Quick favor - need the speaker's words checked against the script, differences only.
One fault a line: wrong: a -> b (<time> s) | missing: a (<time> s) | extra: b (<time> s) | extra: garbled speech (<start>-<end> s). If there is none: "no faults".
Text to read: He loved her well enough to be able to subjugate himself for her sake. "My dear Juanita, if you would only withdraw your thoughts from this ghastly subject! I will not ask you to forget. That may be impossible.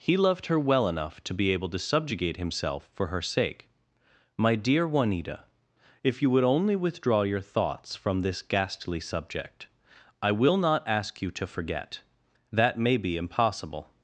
no faults